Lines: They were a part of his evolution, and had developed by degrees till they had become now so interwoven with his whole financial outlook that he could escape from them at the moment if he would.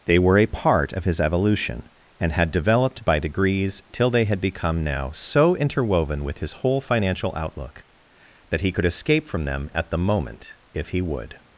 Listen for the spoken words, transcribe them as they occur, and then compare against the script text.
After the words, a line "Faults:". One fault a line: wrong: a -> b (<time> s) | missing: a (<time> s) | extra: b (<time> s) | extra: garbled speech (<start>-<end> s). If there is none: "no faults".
They were a part of his evolution, and had developed by degrees till they had become now so interwoven with his whole financial outlook that he could escape from them at the moment if he would.
Faults:
no faults